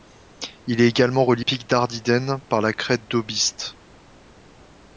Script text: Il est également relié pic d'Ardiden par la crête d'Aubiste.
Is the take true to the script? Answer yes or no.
yes